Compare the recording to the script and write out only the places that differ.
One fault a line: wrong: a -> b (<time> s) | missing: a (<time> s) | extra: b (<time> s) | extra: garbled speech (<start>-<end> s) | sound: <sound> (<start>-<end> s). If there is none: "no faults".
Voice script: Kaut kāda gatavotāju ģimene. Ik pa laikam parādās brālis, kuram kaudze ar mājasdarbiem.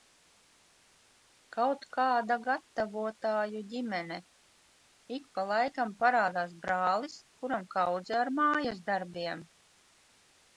no faults